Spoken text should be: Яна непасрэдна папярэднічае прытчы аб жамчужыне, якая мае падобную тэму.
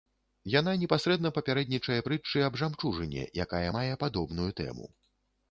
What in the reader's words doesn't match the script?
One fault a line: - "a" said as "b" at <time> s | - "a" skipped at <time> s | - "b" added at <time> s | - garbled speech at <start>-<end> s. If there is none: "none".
none